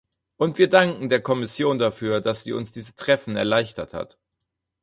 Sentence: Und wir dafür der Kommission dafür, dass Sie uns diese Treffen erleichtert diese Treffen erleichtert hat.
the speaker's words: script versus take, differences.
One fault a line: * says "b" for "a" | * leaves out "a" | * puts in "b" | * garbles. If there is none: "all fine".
* says "danken" for "dafür"
* leaves out "diese Treffen erleichtert"